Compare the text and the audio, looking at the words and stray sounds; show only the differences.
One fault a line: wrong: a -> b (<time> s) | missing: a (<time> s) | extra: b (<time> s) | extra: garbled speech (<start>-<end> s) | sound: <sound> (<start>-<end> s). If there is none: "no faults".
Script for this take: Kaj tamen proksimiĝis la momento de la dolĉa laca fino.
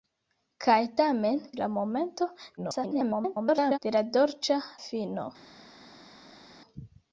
missing: proksimiĝis (1.4 s)
extra: garbled speech (2.6-3.8 s)
missing: laca (4.6 s)